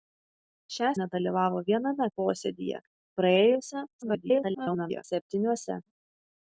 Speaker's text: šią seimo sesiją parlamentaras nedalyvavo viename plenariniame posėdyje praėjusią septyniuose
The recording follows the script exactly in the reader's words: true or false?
false